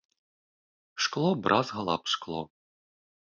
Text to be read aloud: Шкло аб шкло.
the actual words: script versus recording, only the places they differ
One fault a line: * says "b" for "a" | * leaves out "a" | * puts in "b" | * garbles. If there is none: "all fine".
* puts in "бразгала"